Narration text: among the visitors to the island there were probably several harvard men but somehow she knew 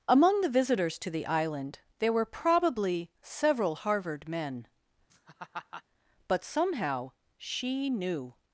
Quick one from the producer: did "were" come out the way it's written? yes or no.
yes